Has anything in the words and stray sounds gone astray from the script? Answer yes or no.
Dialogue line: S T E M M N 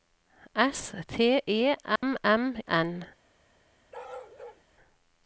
yes